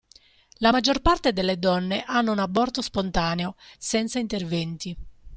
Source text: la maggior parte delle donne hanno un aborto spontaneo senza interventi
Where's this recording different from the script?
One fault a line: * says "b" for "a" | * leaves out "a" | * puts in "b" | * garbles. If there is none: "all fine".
all fine